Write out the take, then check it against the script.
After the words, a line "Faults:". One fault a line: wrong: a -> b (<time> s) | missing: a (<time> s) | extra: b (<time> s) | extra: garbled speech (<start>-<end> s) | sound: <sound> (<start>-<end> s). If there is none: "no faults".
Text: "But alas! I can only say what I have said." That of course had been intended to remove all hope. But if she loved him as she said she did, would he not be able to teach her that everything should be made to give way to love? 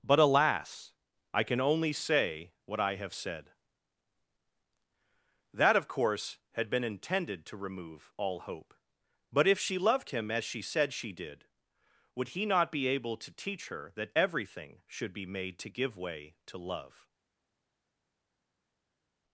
"But alas! I can only say what I have said." That of course had been intended to remove all hope. But if she loved him as she said she did, would he not be able to teach her that everything should be made to give way to love?
Faults:
no faults